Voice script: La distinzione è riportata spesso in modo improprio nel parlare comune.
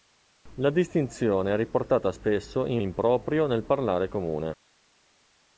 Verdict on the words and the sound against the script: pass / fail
fail